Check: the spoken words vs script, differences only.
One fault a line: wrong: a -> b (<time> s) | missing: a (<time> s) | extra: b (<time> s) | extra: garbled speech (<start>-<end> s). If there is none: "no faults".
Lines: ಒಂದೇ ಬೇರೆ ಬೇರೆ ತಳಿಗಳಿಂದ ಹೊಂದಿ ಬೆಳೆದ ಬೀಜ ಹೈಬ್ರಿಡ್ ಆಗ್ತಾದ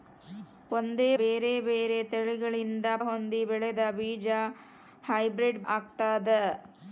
no faults